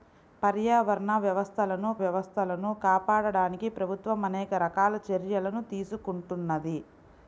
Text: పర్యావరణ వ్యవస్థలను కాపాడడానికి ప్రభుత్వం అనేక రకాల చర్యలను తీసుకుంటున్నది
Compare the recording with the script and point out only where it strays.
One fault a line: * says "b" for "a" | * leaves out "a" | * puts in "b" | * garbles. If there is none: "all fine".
* puts in "వ్యవస్థలను"